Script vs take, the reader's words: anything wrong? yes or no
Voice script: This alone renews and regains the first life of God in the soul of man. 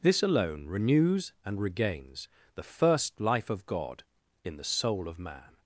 no